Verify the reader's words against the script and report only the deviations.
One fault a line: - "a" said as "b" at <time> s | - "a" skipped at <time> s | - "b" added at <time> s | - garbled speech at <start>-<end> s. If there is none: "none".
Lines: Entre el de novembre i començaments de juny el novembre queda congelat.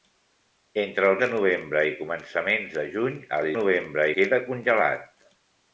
none